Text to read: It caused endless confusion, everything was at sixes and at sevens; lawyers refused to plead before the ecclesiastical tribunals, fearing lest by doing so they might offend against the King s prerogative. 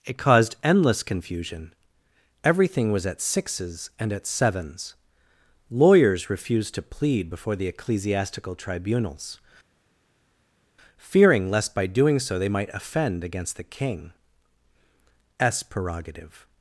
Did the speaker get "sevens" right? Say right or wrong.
right